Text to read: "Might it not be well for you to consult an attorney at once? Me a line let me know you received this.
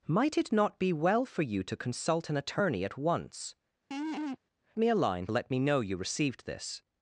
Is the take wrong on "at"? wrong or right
right